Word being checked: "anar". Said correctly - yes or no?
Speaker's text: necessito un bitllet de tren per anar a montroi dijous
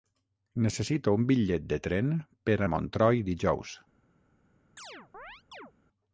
no